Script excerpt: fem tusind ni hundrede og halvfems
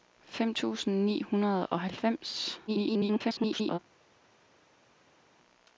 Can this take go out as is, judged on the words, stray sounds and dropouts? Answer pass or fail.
fail